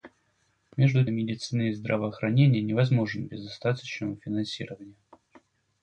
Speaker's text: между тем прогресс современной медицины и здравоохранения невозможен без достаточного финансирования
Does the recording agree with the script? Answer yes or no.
no